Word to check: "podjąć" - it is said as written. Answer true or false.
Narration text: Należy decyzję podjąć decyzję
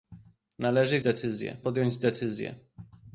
true